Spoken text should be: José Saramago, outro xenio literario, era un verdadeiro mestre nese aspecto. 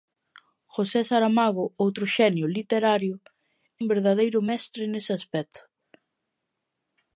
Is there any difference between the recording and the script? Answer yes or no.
yes